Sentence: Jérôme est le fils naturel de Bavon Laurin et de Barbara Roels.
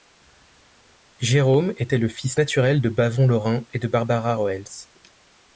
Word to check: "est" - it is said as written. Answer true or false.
false